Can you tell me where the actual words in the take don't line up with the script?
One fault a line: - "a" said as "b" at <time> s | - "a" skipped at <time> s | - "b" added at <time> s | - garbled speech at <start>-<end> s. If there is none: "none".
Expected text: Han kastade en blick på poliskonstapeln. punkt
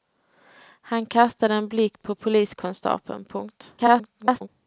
- garbled speech at 3.8-4.5 s